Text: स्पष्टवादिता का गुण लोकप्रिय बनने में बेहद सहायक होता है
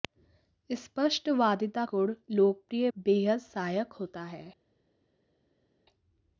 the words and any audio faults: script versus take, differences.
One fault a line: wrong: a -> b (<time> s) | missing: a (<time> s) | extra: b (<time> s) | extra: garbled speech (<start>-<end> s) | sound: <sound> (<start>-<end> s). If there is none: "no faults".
missing: का (1.9 s)
missing: बनने में (2.9 s)